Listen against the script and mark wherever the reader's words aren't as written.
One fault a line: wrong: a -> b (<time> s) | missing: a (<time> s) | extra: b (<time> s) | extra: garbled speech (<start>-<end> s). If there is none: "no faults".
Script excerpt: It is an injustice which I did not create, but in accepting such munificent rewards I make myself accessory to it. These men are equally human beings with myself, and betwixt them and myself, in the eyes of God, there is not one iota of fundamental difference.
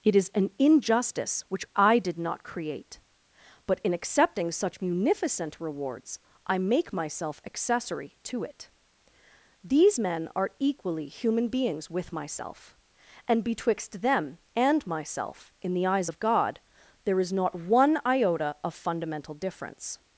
no faults